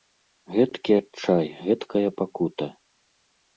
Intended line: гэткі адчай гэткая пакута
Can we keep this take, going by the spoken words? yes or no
yes